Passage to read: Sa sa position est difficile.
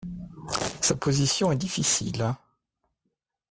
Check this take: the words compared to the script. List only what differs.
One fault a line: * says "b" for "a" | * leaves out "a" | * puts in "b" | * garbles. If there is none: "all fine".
* leaves out "sa"